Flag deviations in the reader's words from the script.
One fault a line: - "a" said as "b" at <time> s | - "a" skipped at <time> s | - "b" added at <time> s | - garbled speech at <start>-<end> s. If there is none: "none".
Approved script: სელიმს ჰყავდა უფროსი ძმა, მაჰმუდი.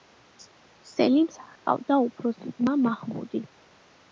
none